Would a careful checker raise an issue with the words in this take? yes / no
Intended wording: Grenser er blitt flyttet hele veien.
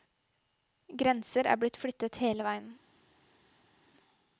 no